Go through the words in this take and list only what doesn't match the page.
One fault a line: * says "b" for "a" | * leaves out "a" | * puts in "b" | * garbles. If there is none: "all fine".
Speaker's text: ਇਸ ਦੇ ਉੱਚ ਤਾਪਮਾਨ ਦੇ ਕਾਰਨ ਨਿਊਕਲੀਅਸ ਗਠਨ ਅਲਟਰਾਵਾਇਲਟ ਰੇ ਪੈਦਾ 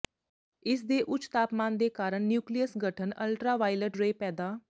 all fine